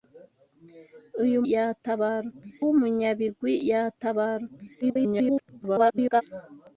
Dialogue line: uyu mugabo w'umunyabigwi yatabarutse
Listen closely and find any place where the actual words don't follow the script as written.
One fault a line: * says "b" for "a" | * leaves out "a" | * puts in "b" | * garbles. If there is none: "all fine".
* says "yatabarutse" for "mugabo"
* garbles